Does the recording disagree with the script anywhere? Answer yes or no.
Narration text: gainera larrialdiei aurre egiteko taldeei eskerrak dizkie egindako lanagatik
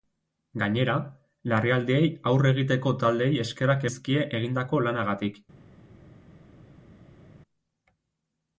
no